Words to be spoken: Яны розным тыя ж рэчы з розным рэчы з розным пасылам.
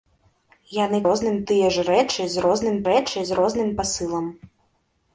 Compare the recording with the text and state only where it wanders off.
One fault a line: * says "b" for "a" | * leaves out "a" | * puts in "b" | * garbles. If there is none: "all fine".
all fine